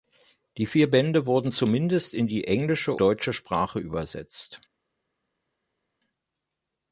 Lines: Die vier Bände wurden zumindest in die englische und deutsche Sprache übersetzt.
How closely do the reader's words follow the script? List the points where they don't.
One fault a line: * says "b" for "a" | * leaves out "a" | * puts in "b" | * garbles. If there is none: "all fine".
* leaves out "und"